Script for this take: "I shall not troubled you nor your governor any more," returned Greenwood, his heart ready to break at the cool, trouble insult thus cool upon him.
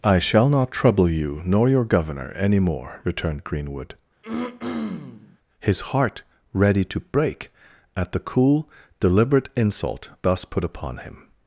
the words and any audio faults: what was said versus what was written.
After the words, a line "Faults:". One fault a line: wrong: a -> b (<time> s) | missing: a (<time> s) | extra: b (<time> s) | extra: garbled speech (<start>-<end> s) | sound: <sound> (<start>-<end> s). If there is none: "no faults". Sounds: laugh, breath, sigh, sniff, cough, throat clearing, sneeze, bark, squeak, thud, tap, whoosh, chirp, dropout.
"I shall not trouble you nor your governor any more," returned Greenwood, his heart ready to break at the cool, deliberate insult thus put upon him.
Faults:
wrong: troubled -> trouble (0.7 s)
sound: throat clearing (4.2-5.4 s)
wrong: trouble -> deliberate (9.0 s)
wrong: cool -> put (10.5 s)